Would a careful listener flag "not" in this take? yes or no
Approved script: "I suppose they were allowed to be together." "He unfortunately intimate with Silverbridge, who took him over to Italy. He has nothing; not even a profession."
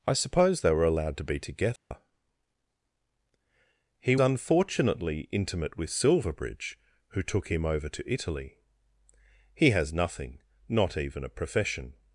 no